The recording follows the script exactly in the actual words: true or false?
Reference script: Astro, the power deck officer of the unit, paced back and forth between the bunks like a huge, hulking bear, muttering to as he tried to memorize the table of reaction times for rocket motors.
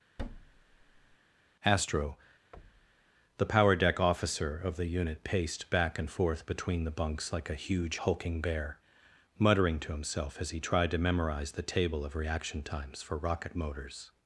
false